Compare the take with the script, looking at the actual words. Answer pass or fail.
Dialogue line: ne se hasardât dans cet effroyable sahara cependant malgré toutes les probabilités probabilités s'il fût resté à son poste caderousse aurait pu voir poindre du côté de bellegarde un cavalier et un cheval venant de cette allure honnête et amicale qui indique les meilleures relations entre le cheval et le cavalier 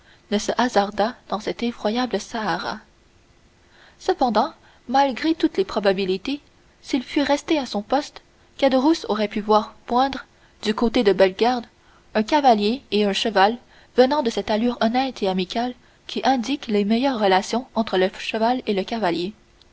fail